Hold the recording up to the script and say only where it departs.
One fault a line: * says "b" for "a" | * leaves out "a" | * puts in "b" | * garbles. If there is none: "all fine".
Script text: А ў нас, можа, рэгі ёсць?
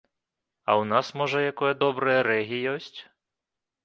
* puts in "якое добрае"